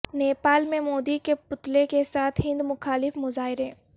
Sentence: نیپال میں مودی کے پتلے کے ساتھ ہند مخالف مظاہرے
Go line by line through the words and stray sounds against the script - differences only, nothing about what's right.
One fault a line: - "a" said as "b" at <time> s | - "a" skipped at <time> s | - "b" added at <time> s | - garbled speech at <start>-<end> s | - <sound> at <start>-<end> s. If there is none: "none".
none